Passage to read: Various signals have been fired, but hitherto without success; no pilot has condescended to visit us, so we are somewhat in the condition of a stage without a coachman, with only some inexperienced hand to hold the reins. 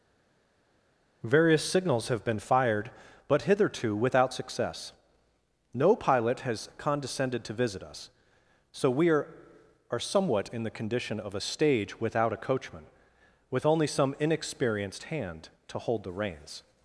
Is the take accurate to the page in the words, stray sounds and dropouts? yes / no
no